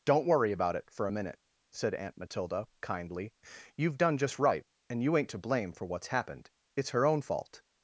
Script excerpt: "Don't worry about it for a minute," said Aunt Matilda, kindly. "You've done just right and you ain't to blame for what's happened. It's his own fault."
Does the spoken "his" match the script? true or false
false